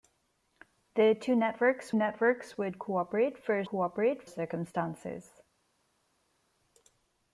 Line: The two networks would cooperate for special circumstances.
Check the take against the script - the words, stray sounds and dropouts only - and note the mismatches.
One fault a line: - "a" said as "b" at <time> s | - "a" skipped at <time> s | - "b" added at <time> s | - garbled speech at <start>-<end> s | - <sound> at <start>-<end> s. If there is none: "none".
- "networks" added at 1.9 s
- "special" said as "cooperate" at 3.6 s